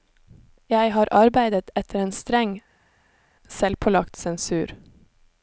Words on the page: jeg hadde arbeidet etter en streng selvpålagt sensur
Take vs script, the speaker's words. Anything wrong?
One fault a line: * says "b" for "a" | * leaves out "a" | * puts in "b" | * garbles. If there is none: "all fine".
* says "har" for "hadde"